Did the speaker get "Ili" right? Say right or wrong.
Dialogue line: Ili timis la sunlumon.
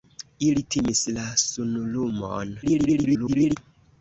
right